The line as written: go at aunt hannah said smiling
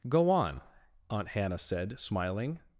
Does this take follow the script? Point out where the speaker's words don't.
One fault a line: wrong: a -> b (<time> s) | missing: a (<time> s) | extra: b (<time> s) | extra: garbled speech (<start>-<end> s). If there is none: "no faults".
wrong: at -> on (0.3 s)